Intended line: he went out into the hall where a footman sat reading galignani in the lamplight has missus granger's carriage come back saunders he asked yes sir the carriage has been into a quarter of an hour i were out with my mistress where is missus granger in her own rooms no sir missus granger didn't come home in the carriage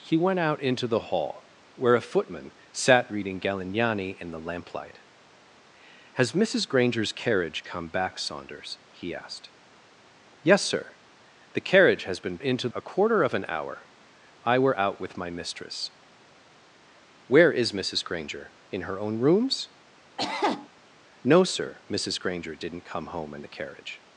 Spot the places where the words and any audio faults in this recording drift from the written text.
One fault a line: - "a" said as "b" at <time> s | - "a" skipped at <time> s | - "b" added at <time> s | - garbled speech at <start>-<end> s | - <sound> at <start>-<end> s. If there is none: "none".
- cough at 20.2-20.7 s